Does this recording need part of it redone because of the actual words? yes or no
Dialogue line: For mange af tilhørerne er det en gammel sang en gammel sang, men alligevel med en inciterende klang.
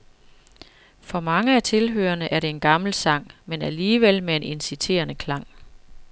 yes